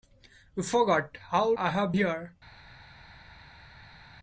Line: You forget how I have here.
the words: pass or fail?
pass